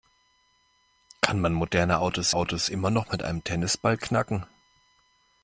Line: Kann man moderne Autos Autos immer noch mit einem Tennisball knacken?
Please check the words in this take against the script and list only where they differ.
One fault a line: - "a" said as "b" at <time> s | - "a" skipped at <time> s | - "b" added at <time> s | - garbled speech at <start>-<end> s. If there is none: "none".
none